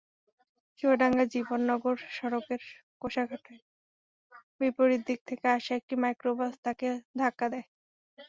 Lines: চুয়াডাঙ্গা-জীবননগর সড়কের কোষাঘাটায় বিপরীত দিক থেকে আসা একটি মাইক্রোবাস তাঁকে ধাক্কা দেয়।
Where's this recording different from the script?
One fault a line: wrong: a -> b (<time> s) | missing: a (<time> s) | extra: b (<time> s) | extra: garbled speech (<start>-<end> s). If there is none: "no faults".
no faults